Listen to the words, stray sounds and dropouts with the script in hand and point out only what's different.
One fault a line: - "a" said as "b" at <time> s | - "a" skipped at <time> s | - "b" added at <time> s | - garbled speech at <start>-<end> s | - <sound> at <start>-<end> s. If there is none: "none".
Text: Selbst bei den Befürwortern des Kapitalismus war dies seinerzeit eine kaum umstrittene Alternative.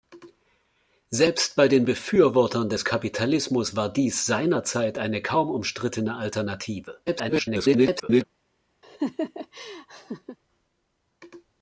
- garbled speech at 7.1-8.2 s
- laugh at 8.8-10.4 s